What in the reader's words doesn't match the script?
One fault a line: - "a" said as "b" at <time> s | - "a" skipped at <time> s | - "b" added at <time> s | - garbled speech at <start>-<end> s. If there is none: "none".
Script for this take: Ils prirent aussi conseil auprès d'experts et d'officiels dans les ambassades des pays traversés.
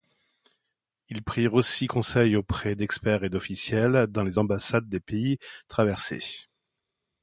none